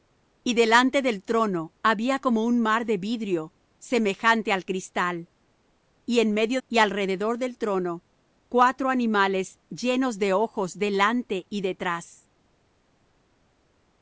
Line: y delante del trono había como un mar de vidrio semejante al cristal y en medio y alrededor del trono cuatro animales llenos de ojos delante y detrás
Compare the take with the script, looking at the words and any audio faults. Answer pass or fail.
pass